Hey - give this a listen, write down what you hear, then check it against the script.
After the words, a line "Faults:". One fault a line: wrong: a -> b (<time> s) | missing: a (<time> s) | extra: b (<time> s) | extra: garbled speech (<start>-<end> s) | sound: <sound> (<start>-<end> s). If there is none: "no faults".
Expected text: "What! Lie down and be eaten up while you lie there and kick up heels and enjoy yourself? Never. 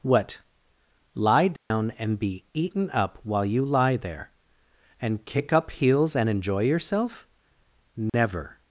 "What! Lie down and be eaten up while you lie there and kick up heels and enjoy yourself? Never.
Faults:
sound: dropout (1.6-1.7 s)
sound: dropout (8.1-8.1 s)